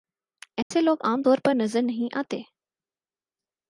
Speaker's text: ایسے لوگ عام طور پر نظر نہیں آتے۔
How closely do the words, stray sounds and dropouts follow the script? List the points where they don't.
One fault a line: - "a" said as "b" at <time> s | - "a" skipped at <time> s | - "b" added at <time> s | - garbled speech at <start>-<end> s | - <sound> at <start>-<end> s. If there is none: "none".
- dropout at 0.6-0.7 s